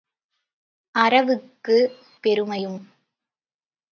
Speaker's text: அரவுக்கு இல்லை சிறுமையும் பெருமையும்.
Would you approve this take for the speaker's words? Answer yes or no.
no